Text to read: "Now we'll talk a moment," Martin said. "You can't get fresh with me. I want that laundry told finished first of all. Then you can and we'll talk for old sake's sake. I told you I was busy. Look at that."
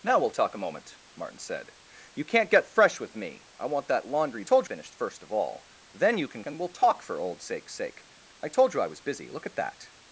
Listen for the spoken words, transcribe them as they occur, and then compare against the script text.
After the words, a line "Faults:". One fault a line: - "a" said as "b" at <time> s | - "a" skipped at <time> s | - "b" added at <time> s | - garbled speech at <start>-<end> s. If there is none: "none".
"Now we'll talk a moment," Martin said. "You can't get fresh with me. I want that laundry told finished first of all. Then you can and we'll talk for old sake's sake. I told you I was busy. Look at that."
Faults:
none